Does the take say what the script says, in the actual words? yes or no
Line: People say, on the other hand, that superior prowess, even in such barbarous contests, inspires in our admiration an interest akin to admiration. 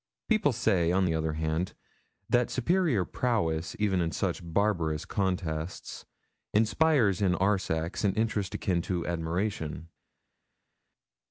no